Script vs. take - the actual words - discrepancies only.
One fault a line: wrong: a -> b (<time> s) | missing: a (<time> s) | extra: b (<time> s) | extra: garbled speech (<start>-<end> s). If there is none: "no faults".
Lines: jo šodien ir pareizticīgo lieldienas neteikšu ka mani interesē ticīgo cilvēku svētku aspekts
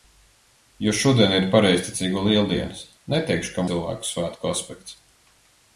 missing: mani interesē ticīgo (3.7 s)